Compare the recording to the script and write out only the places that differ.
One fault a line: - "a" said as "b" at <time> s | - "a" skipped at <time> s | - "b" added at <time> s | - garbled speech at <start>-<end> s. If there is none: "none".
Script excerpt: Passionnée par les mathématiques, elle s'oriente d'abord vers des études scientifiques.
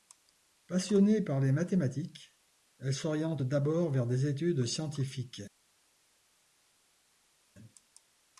none